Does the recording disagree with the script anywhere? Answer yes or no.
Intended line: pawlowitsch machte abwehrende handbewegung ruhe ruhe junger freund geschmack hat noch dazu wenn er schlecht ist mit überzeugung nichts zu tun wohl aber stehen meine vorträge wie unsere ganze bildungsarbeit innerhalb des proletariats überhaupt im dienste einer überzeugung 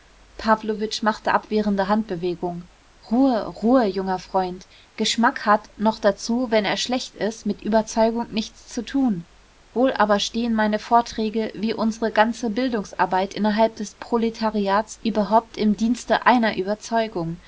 no